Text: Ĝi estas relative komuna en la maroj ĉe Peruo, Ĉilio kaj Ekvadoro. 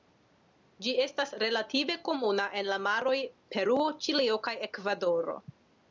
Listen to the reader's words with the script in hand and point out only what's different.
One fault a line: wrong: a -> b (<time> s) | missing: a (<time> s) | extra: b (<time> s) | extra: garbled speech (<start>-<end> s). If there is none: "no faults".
missing: ĉe (3.1 s)